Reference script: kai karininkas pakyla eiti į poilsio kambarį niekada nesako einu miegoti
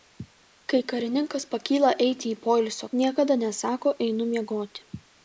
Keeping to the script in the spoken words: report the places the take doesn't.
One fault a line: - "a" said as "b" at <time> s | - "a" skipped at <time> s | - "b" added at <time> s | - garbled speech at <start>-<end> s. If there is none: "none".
- "kambarį" skipped at 2.9 s